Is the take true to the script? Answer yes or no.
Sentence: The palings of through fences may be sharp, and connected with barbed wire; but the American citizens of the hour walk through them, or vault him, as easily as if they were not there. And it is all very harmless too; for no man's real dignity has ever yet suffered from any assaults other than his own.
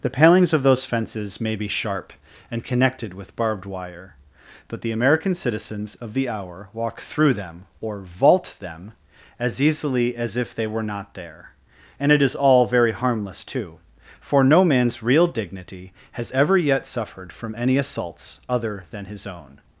no